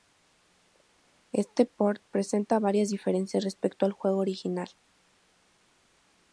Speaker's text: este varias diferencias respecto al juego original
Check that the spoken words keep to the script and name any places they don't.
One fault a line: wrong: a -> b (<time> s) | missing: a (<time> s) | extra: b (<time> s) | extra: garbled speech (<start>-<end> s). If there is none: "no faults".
extra: port presenta (1.7 s)